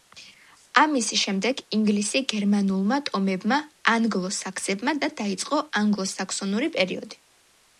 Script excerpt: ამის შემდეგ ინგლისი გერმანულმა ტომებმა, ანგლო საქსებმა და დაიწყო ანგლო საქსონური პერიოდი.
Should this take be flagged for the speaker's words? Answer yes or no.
no